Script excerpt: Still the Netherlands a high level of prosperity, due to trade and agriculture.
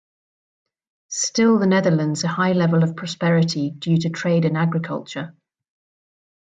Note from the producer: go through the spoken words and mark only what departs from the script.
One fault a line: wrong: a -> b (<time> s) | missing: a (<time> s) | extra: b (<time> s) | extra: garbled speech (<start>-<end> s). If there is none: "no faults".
no faults